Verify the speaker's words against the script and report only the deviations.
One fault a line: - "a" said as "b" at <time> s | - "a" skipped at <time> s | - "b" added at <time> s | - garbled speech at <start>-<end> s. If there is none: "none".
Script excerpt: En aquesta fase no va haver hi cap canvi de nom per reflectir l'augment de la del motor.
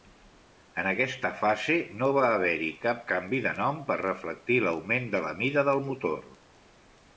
- "mida" added at 5.5 s